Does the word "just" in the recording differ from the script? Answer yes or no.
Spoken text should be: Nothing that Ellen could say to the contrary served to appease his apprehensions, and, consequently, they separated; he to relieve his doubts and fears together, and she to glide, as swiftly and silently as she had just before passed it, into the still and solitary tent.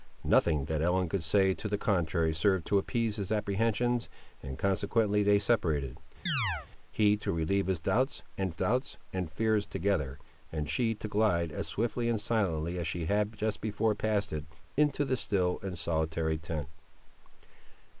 no